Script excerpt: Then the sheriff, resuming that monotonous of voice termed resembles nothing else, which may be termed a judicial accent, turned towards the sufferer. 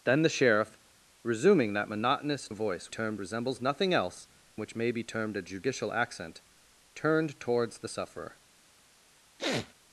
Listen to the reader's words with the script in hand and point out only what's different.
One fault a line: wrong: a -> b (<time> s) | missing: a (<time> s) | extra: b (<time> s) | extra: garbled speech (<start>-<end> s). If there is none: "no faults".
no faults